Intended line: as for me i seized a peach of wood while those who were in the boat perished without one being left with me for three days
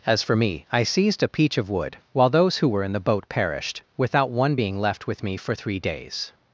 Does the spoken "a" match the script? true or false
true